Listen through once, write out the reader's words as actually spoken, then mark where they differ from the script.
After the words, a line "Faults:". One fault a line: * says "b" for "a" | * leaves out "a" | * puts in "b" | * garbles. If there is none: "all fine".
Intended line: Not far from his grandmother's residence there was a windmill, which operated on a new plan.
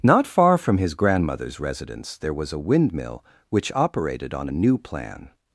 Not far from his grandmother's residence there was a windmill, which operated on a new plan.
Faults:
all fine